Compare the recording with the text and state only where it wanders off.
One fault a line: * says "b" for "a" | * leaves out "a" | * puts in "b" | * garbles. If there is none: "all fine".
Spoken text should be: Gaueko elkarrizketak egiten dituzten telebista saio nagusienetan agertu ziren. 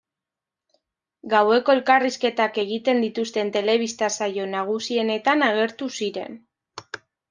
all fine